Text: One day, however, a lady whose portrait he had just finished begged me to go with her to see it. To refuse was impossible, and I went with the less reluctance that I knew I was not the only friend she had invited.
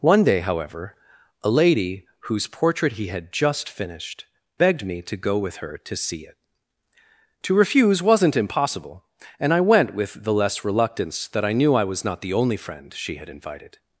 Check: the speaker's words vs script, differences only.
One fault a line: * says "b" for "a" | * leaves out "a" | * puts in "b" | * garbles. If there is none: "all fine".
* says "wasn't" for "was"